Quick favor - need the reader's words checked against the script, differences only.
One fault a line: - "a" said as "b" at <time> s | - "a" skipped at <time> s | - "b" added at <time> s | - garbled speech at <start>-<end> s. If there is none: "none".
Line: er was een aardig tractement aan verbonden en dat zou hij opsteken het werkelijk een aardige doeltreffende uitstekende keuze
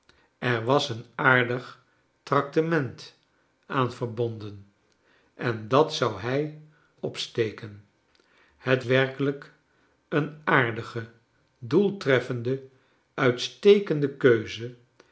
none